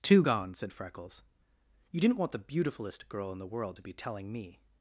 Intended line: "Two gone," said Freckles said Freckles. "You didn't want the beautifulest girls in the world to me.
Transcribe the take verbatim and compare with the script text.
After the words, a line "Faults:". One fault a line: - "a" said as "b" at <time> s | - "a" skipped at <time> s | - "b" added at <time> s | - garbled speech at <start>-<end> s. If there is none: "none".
"Two gone," said Freckles. "You didn't want the beautifulest girl in the world to be telling me.
Faults:
- "said Freckles" skipped at 1.2 s
- "girls" said as "girl" at 3.1 s
- "be telling" added at 3.8 s